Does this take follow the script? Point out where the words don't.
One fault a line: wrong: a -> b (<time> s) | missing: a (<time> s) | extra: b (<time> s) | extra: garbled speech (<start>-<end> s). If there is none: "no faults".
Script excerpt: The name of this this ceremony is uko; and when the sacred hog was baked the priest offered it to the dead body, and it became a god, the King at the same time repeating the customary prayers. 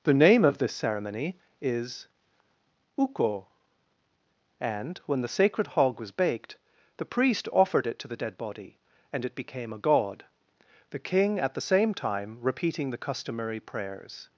missing: this (0.7 s)